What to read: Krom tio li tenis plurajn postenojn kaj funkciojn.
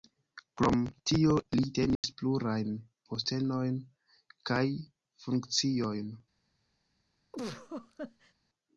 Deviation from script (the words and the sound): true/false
true